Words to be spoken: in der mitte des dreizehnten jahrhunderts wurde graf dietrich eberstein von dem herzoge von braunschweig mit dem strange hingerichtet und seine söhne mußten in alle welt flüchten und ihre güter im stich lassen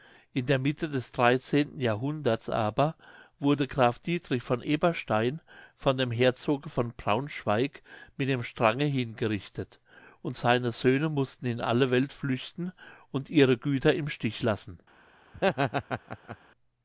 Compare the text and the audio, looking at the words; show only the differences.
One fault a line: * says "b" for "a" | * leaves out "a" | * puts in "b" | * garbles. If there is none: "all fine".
* puts in "aber"
* puts in "von"